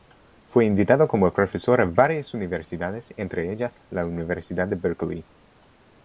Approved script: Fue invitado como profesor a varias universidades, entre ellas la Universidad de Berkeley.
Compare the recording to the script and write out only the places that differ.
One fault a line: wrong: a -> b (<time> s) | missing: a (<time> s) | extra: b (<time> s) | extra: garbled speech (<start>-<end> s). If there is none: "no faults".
no faults